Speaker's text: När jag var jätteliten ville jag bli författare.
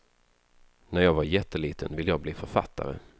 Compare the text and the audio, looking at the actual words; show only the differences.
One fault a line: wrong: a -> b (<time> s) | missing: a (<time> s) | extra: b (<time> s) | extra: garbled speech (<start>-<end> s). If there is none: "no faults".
no faults